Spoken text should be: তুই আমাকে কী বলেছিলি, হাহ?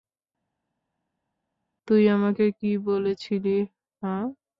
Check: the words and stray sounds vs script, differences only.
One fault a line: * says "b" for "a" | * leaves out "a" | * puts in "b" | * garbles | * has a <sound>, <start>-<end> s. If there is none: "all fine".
all fine